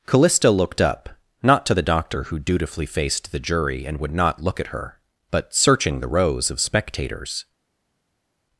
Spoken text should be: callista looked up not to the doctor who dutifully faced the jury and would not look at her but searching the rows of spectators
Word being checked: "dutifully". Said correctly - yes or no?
yes